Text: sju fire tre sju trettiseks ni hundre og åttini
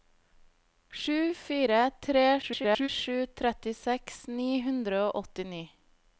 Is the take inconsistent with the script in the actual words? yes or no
yes